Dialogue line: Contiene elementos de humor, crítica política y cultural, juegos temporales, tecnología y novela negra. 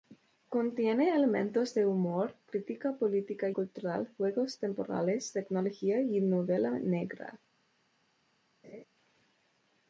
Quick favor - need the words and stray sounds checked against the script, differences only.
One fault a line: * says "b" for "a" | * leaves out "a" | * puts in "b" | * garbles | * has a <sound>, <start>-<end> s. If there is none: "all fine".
* leaves out "y"
* has a laugh, 8.6-8.8 s